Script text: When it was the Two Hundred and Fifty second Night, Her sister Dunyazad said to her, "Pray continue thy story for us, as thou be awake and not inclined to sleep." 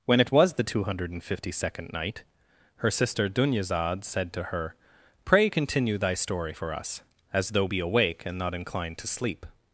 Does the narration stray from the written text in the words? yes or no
yes